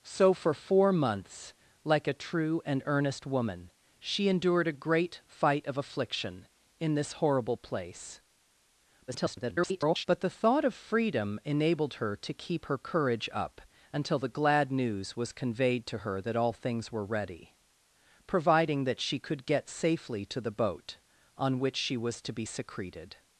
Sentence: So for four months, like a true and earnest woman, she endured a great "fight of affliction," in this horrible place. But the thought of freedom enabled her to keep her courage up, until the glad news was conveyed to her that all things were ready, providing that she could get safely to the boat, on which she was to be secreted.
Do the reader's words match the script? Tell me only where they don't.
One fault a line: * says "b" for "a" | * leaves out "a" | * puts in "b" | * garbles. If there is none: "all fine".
* garbles